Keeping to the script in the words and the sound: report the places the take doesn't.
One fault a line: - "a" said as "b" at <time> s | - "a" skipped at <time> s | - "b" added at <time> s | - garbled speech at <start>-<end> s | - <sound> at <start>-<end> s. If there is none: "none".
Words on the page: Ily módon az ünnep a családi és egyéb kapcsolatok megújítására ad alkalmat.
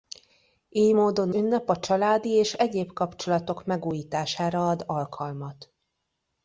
- "az" skipped at 1.3 s